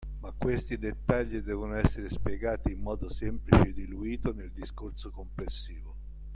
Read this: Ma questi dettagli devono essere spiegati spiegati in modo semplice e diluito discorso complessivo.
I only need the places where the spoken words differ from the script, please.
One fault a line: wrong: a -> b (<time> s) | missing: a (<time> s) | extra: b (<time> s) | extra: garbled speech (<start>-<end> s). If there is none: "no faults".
missing: spiegati (2.7 s)
extra: nel (4.3 s)